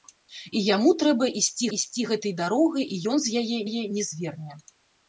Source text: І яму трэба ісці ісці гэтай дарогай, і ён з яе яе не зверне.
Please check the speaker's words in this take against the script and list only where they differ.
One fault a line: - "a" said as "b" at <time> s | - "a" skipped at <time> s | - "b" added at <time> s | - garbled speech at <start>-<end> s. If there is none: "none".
none